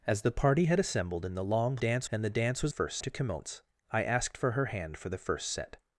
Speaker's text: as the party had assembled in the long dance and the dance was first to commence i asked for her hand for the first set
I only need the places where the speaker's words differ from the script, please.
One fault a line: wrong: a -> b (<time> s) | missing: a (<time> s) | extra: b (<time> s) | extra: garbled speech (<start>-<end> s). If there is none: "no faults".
no faults